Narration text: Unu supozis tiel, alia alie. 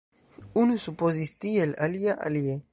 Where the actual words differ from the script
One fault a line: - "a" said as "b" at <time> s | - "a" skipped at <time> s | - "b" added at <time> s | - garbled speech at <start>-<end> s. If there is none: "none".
none